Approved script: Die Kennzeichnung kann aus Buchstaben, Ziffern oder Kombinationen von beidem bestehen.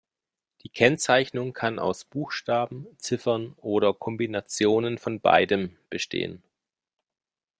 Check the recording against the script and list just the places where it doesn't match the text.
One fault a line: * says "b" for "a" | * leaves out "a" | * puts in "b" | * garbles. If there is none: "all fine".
all fine